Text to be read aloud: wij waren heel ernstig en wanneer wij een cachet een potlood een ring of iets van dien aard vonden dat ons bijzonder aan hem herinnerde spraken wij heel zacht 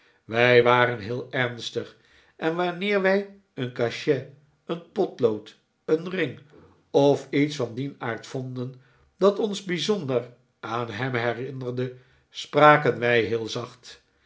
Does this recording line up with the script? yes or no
yes